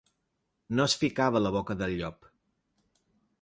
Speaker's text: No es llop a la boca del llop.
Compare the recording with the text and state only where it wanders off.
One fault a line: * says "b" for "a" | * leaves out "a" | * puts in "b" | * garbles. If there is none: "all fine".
* says "ficava" for "llop"